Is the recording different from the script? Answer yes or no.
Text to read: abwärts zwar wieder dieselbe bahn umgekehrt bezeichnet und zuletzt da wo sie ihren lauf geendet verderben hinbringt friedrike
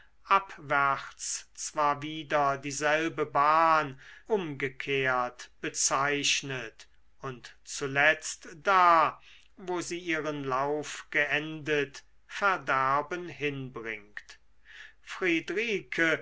no